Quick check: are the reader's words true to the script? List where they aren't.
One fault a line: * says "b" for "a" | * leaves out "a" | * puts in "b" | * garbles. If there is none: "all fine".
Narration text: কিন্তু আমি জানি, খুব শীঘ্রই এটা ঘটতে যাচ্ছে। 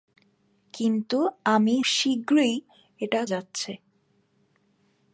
* leaves out "জানি খুব"
* leaves out "ঘটতে"